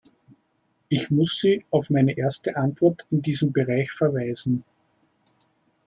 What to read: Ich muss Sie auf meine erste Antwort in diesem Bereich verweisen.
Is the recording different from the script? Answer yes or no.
no